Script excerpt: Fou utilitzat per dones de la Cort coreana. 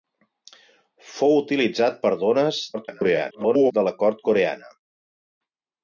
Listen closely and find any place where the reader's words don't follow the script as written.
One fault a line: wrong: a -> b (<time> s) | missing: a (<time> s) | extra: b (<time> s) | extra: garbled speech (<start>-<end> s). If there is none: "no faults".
extra: garbled speech (2.7-3.7 s)